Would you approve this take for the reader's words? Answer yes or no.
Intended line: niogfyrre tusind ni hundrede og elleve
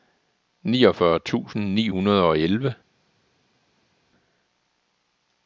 yes